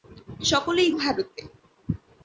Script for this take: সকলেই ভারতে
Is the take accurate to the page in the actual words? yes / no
yes